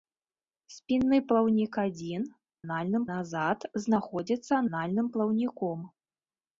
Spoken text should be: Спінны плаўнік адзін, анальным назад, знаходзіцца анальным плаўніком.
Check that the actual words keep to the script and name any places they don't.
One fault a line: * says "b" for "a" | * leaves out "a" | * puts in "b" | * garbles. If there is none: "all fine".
all fine